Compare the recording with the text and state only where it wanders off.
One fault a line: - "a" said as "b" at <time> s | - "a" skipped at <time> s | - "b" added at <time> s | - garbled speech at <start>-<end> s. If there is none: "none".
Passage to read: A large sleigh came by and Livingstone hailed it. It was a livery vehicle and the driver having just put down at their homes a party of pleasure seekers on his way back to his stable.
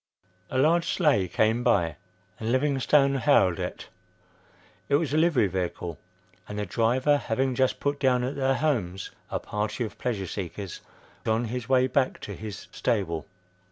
none